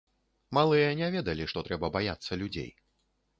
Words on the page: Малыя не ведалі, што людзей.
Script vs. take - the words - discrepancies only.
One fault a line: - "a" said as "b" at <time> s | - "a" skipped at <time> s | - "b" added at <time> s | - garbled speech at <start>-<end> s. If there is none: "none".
- "трэба баяцца" added at 1.7 s